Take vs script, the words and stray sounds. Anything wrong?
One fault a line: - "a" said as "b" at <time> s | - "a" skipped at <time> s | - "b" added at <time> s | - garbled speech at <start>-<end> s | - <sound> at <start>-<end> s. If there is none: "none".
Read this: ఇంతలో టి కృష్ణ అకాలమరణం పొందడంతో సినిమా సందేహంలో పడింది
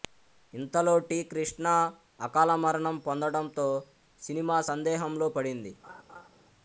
- laugh at 5.8-6.3 s